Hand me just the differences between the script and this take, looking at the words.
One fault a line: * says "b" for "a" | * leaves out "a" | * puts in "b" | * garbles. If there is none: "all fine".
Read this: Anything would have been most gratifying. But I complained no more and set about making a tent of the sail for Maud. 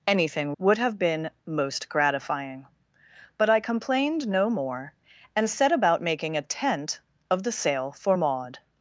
all fine